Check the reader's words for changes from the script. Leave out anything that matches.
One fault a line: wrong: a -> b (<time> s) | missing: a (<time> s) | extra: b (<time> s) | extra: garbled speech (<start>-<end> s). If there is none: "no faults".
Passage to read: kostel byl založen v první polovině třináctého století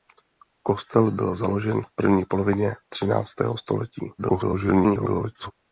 extra: garbled speech (4.2-5.5 s)